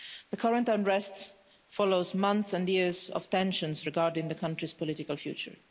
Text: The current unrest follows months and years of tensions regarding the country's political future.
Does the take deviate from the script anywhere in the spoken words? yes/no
no